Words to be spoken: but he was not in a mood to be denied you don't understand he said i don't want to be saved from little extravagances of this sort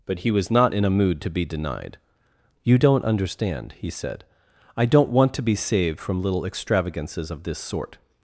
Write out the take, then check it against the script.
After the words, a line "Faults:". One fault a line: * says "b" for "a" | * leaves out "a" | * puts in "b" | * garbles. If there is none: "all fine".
but he was not in a mood to be denied you don't understand he said i don't want to be saved from little extravagances of this sort
Faults:
all fine